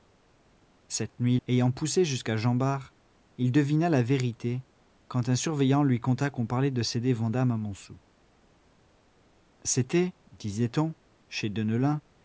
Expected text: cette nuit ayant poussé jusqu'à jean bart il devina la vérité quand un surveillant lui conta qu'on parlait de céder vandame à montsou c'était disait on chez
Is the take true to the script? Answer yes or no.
yes